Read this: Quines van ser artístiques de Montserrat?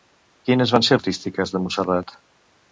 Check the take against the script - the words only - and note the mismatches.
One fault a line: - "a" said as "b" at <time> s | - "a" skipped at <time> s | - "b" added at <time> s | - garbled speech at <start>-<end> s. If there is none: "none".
none